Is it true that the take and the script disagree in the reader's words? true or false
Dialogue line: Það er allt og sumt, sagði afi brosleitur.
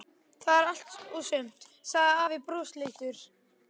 false